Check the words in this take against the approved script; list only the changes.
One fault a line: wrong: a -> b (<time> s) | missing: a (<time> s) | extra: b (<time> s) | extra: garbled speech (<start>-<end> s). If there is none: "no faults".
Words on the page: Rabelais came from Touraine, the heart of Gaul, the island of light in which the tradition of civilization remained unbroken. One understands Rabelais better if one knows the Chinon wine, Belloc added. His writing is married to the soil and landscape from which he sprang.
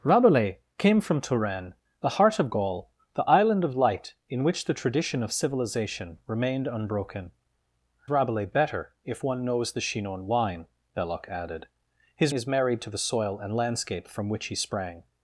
missing: One understands (7.3 s)
missing: writing (12.3 s)